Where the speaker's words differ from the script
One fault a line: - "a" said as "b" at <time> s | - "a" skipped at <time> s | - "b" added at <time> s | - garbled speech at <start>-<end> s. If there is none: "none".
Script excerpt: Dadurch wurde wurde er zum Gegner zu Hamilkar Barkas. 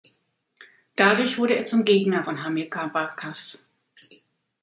- "wurde" skipped at 1.6 s
- "zu" said as "von" at 2.2 s